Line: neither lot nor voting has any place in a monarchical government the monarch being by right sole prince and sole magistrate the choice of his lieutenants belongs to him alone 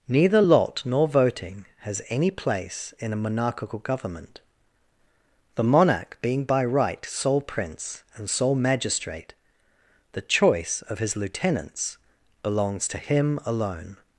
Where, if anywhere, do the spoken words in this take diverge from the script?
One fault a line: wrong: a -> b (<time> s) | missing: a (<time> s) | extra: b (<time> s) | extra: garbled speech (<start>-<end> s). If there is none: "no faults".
no faults